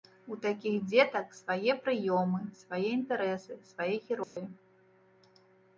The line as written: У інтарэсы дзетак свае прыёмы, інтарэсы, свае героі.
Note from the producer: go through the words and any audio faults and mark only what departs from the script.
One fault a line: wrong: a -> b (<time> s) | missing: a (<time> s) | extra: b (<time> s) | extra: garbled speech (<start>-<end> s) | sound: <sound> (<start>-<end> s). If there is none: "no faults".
wrong: інтарэсы -> такіх (0.5 s)
extra: свае (2.6 s)
sound: dropout (4.2-4.4 s)